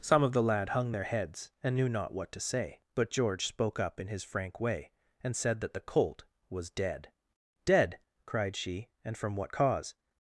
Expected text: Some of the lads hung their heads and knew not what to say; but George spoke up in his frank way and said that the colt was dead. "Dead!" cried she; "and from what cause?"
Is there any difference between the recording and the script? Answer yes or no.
yes